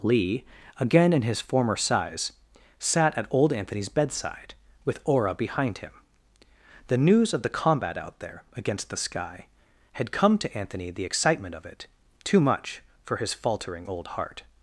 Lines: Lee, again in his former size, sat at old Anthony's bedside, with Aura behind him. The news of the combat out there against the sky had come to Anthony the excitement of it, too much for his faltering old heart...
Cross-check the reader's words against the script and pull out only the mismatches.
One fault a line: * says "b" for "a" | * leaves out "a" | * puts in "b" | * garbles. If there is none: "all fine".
all fine